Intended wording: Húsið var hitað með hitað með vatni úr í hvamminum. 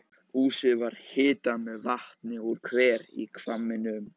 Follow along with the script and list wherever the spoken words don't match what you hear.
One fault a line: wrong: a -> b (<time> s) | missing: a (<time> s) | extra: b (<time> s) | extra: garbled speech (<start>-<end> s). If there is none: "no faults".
missing: hitað með (1.8 s)
extra: hver (2.7 s)